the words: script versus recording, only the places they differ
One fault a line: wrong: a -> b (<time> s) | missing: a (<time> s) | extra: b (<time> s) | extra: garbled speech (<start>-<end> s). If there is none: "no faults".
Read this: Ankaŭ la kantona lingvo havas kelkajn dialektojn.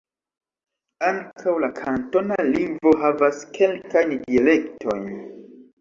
no faults